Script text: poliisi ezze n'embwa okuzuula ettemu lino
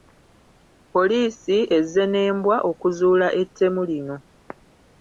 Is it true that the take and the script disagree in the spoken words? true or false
false